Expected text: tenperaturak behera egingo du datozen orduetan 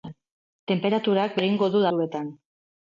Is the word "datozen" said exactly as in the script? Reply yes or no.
no